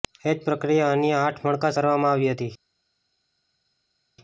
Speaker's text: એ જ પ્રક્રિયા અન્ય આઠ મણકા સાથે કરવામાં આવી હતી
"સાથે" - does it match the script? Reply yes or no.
no